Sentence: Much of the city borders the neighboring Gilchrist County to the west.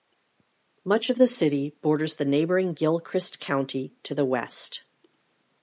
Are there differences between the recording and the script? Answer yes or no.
no